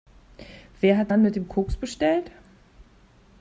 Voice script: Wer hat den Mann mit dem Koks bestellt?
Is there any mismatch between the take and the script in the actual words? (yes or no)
yes